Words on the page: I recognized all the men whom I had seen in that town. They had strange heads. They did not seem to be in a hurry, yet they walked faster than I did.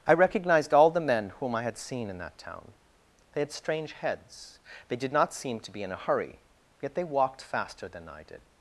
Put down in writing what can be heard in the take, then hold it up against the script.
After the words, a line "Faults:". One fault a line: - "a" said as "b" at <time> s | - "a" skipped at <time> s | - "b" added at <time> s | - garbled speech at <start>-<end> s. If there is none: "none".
I recognized all the men whom I had seen in that town. They had strange heads. They did not seem to be in a hurry, yet they walked faster than I did.
Faults:
none